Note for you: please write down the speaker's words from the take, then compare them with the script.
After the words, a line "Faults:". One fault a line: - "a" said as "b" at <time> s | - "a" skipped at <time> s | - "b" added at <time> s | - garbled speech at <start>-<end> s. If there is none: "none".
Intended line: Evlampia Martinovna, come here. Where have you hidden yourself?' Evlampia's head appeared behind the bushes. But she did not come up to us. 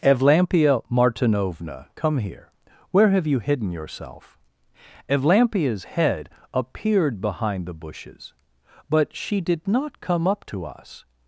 Evlampia Martinovna, come here. Where have you hidden yourself?' Evlampia's head appeared behind the bushes. But she did not come up to us.
Faults:
none